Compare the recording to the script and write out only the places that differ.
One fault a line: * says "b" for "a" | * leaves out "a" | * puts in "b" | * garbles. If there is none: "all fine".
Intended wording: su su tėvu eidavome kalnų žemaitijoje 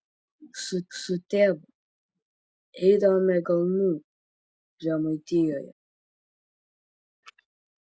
all fine